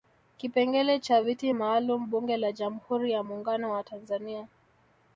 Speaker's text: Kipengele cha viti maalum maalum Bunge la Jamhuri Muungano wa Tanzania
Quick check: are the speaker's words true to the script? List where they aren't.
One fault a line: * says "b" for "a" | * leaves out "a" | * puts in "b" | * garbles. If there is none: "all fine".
* leaves out "maalum"
* puts in "ya"